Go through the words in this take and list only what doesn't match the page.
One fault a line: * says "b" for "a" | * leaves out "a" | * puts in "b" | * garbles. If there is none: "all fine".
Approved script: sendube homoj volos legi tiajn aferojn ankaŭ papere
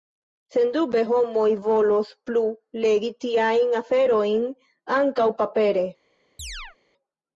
* puts in "plu"